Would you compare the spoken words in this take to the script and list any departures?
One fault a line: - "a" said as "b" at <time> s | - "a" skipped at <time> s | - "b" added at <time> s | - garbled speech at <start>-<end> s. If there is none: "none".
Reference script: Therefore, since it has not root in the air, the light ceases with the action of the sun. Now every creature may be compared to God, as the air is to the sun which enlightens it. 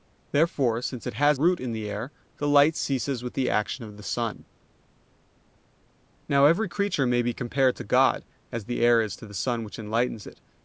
- "not" skipped at 1.4 s